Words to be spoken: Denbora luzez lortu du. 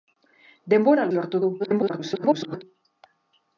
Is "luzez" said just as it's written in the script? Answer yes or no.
no